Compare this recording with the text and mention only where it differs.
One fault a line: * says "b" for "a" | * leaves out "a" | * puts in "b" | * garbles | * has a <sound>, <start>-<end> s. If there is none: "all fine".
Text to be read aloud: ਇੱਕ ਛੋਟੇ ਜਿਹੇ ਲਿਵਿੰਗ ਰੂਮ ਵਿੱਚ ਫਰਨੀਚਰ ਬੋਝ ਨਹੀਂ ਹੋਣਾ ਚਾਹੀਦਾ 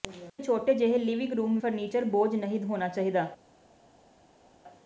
* leaves out "ਵਿੱਚ"